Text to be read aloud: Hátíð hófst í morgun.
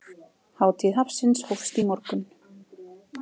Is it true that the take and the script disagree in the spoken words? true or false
true